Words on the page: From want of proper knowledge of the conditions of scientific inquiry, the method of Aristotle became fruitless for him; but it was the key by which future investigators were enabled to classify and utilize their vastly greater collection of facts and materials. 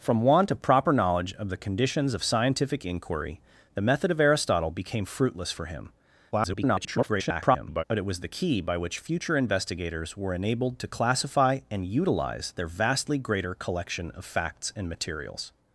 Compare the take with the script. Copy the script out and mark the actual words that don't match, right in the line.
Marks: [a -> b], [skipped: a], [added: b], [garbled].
From want of proper knowledge of the conditions of scientific inquiry, the method of Aristotle became fruitless for him; [garbled] but it was the key by which future investigators were enabled to classify and utilize their vastly greater collection of facts and materials.